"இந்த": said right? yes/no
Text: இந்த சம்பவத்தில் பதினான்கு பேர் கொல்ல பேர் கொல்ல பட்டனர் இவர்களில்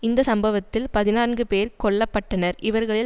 yes